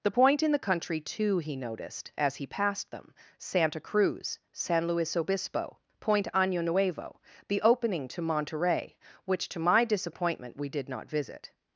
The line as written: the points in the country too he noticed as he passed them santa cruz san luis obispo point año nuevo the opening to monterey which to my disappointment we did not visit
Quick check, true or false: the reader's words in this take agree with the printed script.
false